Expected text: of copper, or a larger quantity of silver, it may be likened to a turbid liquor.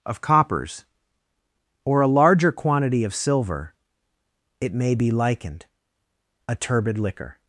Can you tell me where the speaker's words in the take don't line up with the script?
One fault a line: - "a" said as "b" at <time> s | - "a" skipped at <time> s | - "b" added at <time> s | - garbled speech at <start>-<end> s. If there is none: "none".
- "copper" said as "coppers" at 0.2 s
- "to" skipped at 5.7 s